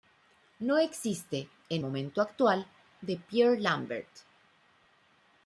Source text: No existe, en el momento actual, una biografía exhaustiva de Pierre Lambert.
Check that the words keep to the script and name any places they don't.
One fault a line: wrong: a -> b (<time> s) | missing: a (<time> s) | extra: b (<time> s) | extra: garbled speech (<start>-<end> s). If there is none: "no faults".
missing: el (1.8 s)
missing: una biografía exhaustiva (2.7 s)